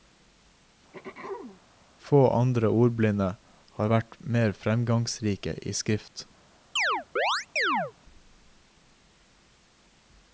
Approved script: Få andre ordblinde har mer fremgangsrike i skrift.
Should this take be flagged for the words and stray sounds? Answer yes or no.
yes